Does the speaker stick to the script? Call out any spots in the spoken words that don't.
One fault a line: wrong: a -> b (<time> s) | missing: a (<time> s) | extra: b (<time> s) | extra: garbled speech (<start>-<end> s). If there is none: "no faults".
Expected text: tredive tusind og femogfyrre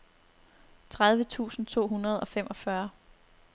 extra: to hundrede (1.7 s)